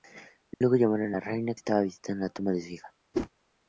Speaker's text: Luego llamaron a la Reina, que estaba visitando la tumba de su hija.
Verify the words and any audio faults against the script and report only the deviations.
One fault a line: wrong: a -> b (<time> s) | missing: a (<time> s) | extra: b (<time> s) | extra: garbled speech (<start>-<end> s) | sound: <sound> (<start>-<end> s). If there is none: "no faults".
sound: dropout (0.5-0.6 s)
missing: que (1.5 s)
sound: whoosh (3.1-3.3 s)